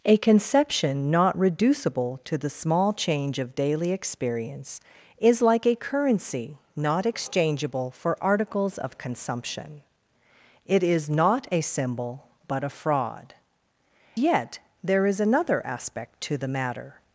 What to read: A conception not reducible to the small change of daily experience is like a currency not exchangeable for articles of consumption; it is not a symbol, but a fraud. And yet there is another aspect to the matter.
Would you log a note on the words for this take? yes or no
yes